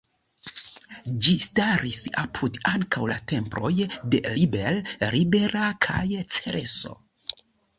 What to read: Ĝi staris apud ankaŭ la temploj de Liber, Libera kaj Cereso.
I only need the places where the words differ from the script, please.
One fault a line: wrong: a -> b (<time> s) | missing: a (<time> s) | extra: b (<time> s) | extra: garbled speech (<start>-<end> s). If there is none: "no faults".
no faults